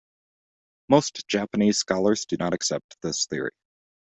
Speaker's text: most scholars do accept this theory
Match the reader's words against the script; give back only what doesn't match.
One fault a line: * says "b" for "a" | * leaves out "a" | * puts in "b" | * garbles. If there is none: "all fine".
* puts in "japanese"
* puts in "not"